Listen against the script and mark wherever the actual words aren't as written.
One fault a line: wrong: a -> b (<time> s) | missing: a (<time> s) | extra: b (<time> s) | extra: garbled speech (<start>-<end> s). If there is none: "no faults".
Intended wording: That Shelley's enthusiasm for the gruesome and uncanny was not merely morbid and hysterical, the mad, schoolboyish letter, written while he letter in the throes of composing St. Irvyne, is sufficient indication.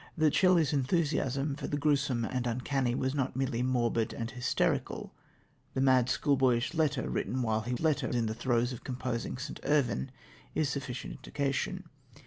no faults